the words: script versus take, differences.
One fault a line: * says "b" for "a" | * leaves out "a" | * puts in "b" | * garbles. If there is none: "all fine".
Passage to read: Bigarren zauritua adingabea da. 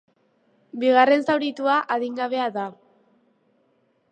all fine